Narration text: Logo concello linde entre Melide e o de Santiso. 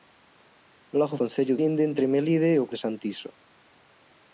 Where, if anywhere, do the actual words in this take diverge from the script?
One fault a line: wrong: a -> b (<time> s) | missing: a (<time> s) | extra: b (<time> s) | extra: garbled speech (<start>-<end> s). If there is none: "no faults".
no faults